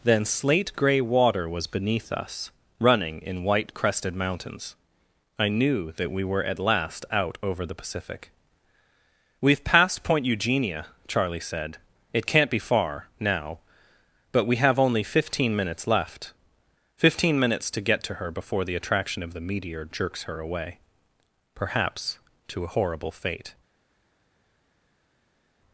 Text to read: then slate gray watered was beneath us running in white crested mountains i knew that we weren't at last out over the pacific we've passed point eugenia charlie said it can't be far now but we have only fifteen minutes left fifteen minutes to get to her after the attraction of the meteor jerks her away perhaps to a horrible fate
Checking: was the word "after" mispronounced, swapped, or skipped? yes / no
yes